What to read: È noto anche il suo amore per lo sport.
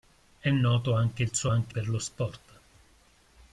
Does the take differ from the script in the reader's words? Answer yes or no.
yes